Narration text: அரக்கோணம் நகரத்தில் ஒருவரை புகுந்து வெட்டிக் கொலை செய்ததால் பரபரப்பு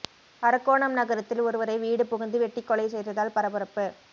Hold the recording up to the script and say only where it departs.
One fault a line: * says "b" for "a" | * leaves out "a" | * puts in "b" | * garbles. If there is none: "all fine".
* puts in "வீடு"